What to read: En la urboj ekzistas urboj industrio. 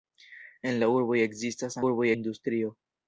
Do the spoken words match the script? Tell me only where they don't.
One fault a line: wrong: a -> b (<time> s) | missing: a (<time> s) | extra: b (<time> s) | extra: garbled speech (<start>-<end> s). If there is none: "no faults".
no faults